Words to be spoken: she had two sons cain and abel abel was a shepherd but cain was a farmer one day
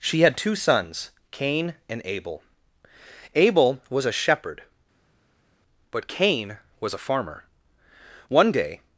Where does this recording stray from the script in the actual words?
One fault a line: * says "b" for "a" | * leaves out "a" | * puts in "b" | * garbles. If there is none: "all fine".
all fine